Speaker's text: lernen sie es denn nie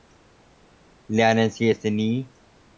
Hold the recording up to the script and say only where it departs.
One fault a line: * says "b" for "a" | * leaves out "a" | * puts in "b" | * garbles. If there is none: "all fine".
all fine